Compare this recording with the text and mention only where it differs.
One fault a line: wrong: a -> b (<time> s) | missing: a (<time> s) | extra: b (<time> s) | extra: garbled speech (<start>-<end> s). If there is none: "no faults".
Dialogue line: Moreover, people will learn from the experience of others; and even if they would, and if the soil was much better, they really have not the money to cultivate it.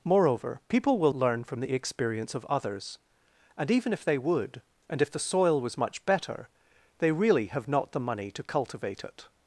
no faults